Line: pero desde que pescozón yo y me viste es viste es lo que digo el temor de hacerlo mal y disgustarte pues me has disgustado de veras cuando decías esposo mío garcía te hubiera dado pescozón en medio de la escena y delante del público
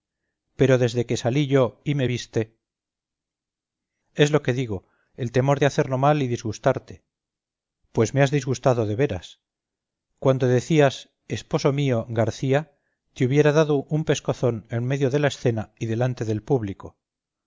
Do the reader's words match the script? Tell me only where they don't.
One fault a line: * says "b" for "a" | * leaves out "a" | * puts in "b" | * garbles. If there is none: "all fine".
* says "salí" for "pescozón"
* leaves out "viste es"
* puts in "un"